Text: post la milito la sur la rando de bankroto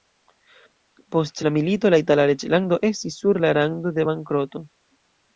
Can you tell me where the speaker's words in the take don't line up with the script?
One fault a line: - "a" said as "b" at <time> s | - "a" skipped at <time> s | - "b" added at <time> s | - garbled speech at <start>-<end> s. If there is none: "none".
- "itala reĝlando estis" added at 2.0 s